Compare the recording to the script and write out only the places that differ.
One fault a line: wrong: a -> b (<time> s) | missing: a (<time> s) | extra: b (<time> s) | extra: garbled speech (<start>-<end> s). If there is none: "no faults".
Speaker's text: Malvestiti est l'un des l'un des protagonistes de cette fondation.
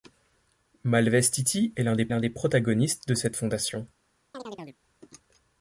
no faults